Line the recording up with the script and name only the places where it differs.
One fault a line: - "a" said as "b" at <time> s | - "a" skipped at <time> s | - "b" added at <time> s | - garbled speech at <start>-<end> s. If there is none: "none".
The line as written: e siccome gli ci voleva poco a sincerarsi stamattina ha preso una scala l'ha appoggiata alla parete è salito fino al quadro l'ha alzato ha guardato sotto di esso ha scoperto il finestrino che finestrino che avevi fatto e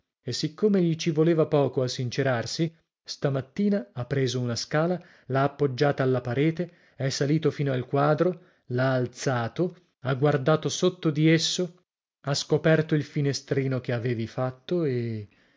- "finestrino che" skipped at 13.9 s